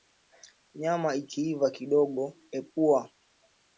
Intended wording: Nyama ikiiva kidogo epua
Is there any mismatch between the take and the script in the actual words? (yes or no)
no